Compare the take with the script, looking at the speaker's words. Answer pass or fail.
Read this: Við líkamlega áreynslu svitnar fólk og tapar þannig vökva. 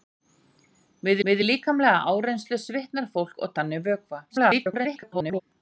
fail